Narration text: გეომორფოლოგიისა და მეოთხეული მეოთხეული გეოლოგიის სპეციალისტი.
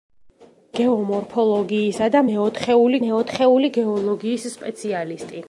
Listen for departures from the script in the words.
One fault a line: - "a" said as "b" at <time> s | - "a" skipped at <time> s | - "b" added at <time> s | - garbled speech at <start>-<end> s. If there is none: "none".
none